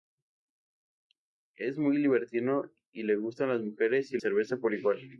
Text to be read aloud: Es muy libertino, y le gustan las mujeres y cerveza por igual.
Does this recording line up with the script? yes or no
yes